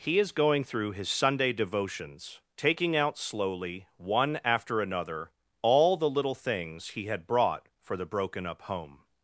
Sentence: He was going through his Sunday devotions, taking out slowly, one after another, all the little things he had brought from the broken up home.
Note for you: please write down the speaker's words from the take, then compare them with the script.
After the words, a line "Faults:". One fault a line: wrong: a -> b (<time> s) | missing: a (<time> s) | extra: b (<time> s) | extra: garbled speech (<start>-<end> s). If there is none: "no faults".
He is going through his Sunday devotions, taking out slowly, one after another, all the little things he had brought for the broken up home.
Faults:
wrong: was -> is (0.2 s)
wrong: from -> for (7.8 s)